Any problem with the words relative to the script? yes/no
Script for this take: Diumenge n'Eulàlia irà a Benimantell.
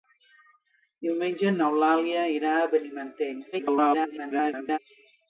yes